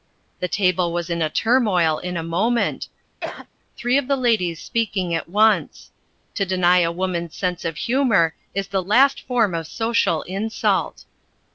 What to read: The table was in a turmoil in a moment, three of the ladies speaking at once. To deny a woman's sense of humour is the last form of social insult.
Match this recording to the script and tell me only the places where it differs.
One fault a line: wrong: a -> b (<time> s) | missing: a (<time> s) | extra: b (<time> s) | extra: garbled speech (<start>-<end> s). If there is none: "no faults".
no faults